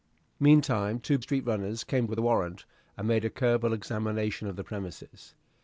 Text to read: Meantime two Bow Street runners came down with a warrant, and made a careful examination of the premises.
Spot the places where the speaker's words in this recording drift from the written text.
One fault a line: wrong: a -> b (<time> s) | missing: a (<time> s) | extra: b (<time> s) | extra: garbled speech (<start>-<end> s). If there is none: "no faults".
missing: Bow (1.2 s)
missing: down (2.1 s)